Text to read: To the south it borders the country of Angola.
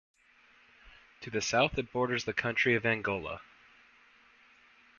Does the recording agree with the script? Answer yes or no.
yes